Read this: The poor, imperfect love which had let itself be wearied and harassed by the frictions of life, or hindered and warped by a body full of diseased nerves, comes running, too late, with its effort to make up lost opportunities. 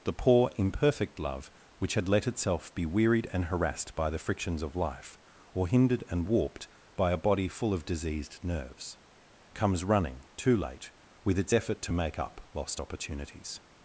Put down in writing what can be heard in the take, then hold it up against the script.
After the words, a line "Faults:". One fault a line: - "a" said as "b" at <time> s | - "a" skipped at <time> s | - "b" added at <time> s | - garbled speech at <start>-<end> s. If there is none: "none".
The poor, imperfect love which had let itself be wearied and harassed by the frictions of life, or hindered and warped by a body full of diseased nerves, comes running, too late, with its effort to make up lost opportunities.
Faults:
none